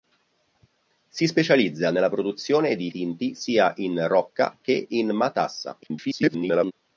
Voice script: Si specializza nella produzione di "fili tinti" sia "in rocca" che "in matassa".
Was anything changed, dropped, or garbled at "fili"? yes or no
yes